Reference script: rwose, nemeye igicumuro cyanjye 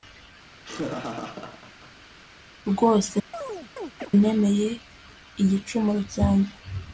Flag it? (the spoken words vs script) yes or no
no